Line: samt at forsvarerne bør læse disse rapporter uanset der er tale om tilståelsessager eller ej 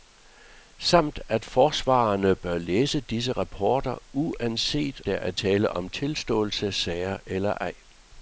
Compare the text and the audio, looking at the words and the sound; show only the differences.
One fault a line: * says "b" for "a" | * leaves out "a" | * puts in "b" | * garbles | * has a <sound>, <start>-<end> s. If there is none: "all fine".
all fine